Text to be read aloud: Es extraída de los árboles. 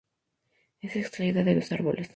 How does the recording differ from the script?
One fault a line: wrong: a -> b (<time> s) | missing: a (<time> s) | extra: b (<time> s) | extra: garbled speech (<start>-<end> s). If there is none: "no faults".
no faults